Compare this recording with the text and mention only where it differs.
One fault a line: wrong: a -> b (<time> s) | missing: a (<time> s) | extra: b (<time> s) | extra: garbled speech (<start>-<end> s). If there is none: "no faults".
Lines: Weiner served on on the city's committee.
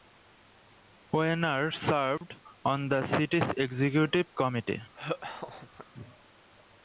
missing: on (2.9 s)
extra: executive (3.6 s)